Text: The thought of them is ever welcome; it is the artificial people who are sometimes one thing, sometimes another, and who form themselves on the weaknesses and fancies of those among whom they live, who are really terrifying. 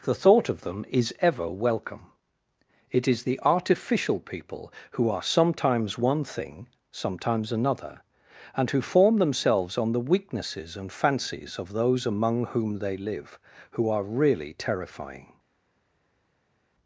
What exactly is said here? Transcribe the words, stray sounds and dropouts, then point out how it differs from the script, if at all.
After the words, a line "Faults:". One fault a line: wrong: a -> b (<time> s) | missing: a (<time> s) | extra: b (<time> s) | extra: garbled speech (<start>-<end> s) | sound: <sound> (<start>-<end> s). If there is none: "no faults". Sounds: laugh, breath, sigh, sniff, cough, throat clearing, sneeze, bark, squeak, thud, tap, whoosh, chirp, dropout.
The thought of them is ever welcome; it is the artificial people who are sometimes one thing, sometimes another, and who form themselves on the weaknesses and fancies of those among whom they live, who are really terrifying.
Faults:
no faults